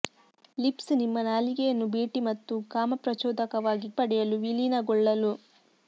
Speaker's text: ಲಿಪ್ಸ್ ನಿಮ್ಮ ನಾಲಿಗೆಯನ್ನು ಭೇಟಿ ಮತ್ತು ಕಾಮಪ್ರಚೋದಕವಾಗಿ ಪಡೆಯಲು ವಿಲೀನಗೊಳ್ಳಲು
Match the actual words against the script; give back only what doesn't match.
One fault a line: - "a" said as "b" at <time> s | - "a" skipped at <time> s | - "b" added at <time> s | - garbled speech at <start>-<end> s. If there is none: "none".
none